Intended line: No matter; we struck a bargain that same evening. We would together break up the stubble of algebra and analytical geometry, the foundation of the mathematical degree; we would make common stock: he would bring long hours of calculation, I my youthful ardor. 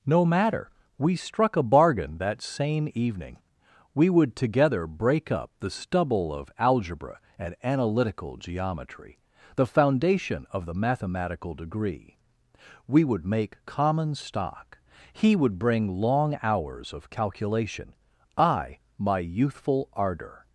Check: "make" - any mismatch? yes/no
no